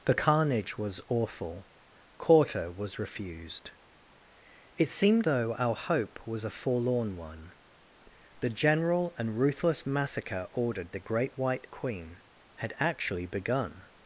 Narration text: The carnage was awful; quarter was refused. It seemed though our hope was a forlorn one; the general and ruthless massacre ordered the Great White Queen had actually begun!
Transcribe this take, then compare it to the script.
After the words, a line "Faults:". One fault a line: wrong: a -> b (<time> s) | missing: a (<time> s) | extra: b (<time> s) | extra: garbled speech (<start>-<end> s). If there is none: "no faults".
The carnage was awful; quarter was refused. It seemed though our hope was a forlorn one; the general and ruthless massacre ordered the Great White Queen had actually begun!
Faults:
no faults